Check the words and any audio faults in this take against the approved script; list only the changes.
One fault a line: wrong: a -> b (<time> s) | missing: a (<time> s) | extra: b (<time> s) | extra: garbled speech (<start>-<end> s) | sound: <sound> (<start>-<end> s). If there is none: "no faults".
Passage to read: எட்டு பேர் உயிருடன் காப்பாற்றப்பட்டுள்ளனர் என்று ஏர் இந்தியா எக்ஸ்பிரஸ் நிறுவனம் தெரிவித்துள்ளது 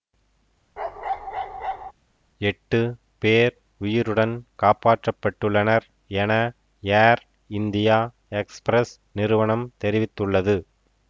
sound: bark (0.8-1.9 s)
wrong: என்று -> என (6.1 s)